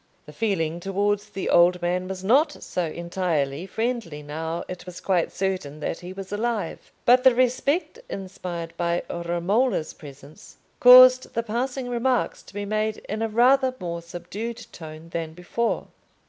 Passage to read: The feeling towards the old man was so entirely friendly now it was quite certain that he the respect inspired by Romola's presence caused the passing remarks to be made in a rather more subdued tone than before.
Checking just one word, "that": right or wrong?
right